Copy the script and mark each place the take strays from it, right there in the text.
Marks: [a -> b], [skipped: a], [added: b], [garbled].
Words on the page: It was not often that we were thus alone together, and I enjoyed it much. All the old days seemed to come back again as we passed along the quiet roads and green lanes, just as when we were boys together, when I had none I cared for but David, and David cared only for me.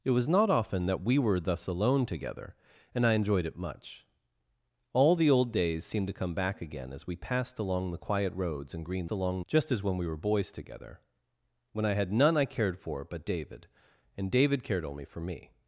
It was not often that we were thus alone together, and I enjoyed it much. All the old days seemed to come back again as we passed along the quiet roads and green [lanes, -> along] just as when we were boys together, when I had none I cared for but David, and David cared only for me.